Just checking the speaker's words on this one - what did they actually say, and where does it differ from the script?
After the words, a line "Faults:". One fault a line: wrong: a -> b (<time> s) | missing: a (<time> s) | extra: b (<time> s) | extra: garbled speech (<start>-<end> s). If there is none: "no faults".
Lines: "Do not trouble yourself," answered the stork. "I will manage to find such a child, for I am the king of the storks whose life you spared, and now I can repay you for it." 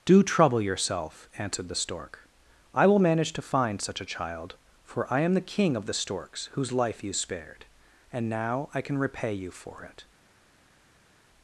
"Do trouble yourself," answered the stork. "I will manage to find such a child, for I am the king of the storks whose life you spared, and now I can repay you for it."
Faults:
missing: not (0.2 s)